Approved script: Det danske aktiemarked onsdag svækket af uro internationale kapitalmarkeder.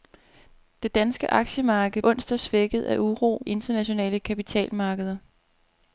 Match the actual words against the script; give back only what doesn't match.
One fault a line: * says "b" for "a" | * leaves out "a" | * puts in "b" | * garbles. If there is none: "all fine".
all fine